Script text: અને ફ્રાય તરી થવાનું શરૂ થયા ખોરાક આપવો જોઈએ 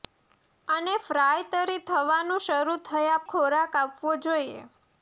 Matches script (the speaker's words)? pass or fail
pass